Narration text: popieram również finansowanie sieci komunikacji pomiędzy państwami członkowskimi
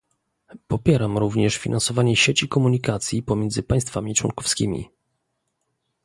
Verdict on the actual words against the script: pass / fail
pass